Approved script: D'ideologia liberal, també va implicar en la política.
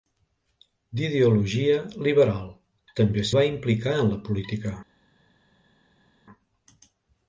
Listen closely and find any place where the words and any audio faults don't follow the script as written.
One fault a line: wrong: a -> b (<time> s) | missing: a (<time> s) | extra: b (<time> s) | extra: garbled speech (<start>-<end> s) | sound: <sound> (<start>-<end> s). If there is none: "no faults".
no faults